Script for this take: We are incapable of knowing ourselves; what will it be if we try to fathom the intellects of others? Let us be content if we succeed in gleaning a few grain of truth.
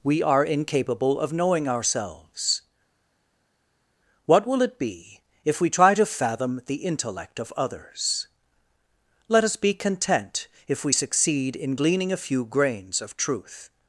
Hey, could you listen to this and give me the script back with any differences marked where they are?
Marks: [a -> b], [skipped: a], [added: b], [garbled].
We are incapable of knowing ourselves; what will it be if we try to fathom the [intellects -> intellect] of others? Let us be content if we succeed in gleaning a few [grain -> grains] of truth.